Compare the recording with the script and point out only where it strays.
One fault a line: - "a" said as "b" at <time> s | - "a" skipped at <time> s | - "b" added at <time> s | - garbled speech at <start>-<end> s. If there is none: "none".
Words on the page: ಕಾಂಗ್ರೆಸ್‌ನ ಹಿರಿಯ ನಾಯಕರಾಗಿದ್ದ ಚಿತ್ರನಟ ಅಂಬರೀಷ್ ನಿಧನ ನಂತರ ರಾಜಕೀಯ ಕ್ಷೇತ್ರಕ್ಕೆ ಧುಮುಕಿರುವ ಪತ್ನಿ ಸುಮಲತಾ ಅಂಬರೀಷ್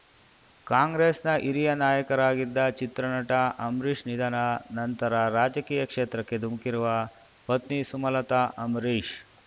none